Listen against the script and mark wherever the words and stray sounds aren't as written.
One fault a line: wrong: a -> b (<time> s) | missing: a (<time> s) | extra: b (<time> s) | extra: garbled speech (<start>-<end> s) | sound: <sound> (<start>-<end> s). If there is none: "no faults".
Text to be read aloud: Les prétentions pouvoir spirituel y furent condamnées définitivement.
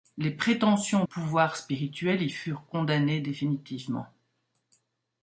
no faults